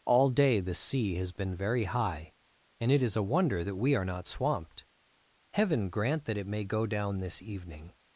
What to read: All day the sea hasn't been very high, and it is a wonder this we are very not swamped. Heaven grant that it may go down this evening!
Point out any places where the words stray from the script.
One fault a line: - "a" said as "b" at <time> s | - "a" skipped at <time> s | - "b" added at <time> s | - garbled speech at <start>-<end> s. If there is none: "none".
- "hasn't" said as "has" at 1.1 s
- "this" said as "that" at 3.6 s
- "very" skipped at 4.0 s